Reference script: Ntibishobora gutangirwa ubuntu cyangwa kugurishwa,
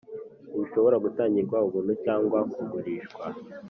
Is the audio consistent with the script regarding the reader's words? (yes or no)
yes